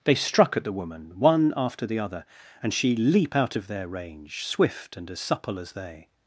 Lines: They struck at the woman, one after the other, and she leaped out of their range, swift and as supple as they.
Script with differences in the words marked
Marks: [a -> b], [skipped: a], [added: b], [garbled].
They struck at the woman, one after the other, and she [leaped -> leap] out of their range, swift and as supple as they.